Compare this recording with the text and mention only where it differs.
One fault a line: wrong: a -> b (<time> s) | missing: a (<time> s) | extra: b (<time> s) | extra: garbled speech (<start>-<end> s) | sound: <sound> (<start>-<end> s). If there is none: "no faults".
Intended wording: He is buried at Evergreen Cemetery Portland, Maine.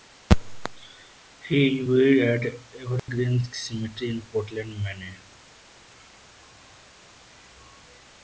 sound: dropout (3.0-3.1 s)
extra: in (4.1 s)